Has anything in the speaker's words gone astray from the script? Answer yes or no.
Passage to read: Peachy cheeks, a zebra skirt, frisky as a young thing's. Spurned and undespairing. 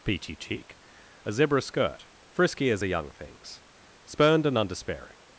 yes